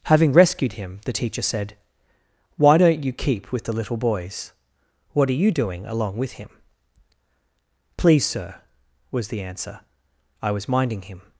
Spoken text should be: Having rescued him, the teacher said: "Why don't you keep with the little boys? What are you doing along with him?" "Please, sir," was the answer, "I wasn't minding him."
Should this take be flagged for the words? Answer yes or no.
yes